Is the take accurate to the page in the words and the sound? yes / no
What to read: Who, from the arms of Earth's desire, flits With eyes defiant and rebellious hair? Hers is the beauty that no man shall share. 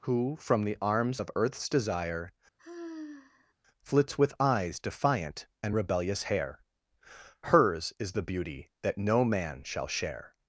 no